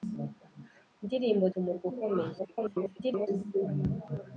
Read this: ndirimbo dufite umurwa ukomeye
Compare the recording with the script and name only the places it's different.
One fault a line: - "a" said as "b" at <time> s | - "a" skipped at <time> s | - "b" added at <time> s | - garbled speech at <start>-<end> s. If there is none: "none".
- "dufite" skipped at 1.4 s
- garbled speech at 2.4-3.3 s